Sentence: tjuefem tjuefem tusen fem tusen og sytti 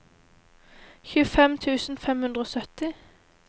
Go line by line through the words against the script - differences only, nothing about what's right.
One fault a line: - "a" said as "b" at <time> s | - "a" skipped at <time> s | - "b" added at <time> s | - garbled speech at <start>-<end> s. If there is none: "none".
- "tjuefem" skipped at 1.5 s
- "tusen" said as "hundre" at 2.3 s